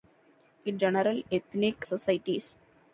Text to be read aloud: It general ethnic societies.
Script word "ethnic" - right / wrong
right